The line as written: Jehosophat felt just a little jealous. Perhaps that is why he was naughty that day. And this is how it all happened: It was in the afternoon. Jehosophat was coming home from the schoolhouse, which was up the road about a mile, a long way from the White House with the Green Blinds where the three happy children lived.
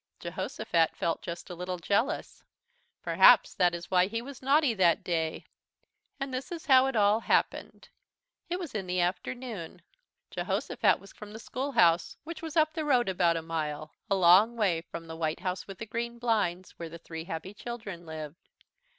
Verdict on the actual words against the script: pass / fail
fail